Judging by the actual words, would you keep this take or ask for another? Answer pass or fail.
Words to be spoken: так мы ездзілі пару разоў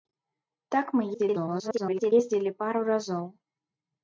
fail